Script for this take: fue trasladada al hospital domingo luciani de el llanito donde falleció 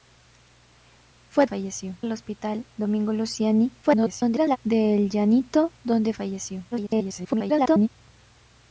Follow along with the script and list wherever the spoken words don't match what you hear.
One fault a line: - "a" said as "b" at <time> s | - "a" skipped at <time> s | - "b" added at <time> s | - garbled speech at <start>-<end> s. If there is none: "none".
- "trasladada" said as "falleció" at 1.4 s
- garbled speech at 3.8-4.6 s
- garbled speech at 6.7-7.9 s